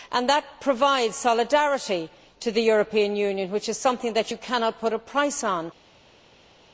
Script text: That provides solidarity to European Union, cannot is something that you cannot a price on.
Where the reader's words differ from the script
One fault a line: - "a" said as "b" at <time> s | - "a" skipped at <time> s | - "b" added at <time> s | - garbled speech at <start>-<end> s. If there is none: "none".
- "the" added at 2.5 s
- "cannot" said as "which" at 3.5 s
- "put" added at 4.8 s